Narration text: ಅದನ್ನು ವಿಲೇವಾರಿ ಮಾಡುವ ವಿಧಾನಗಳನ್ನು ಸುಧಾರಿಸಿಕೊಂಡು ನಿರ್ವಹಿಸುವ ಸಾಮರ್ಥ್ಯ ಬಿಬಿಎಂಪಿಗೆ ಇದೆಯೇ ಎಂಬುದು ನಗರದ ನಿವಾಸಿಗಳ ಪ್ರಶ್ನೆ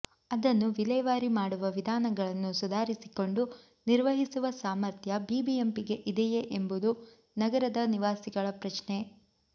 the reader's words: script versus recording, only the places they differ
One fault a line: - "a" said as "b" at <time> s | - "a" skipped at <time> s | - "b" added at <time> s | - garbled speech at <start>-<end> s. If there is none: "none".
none